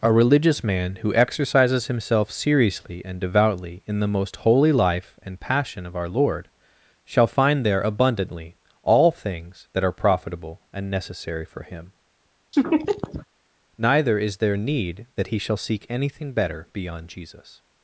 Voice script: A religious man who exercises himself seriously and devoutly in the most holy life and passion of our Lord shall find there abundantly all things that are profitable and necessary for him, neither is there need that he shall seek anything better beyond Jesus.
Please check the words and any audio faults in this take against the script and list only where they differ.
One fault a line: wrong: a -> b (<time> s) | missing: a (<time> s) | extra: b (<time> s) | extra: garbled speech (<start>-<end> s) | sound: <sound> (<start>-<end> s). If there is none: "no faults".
sound: laugh (12.5-13.3 s)